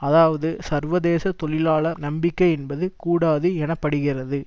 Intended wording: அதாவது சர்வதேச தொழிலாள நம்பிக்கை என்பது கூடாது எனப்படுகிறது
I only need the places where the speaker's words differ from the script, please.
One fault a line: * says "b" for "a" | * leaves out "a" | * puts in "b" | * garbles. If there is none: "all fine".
all fine